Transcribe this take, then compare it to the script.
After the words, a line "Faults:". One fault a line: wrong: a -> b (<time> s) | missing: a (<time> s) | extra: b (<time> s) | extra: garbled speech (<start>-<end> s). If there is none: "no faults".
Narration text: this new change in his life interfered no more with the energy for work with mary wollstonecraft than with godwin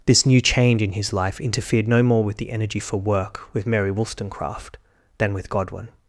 this new change in his life interfered no more with the energy for work with mary wollstonecraft than with godwin
Faults:
no faults